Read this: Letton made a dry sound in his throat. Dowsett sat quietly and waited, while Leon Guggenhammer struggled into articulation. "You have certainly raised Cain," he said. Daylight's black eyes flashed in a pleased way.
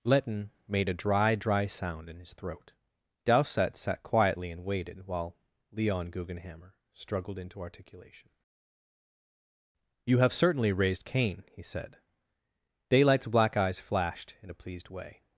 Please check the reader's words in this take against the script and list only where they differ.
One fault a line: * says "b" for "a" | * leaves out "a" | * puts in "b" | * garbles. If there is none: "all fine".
* puts in "dry"